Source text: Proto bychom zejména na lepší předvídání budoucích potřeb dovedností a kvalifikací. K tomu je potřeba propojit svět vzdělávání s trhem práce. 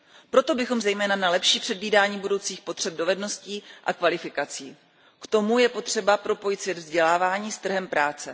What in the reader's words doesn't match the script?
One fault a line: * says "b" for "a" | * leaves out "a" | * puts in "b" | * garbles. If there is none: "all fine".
all fine